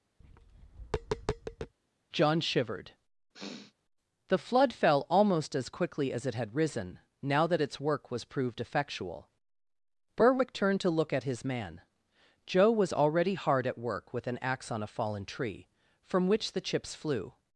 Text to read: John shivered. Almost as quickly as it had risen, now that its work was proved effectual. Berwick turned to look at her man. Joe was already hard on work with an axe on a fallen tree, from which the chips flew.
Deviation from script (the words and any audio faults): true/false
true